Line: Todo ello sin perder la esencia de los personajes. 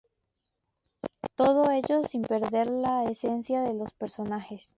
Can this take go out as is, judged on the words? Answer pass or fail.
pass